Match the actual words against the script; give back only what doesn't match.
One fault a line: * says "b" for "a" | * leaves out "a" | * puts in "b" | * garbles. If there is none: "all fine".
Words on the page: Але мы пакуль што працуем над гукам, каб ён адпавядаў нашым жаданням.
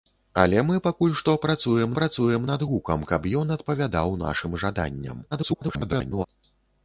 * puts in "працуем"
* garbles